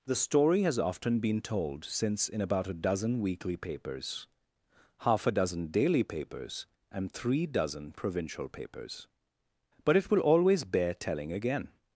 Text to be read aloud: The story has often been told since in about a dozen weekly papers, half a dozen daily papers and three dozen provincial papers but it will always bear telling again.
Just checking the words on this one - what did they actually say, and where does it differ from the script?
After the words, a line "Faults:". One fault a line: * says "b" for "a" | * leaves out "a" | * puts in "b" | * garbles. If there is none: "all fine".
The story has often been told since in about a dozen weekly papers, half a dozen daily papers and three dozen provincial papers but it will always bear telling again.
Faults:
all fine